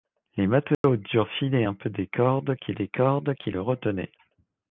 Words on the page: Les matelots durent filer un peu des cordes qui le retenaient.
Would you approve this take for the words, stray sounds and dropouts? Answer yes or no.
no